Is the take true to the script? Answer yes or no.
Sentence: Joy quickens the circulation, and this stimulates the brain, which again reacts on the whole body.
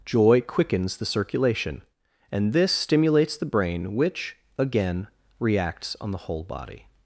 yes